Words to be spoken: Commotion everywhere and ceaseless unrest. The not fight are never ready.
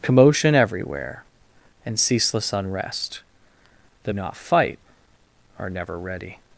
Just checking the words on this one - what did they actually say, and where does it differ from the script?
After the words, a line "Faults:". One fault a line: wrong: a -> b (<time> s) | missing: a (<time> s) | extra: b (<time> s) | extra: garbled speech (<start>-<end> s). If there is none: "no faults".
Commotion everywhere and ceaseless unrest. The not fight are never ready.
Faults:
no faults